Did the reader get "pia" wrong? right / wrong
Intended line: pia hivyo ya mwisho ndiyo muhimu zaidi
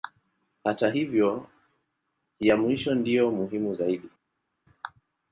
wrong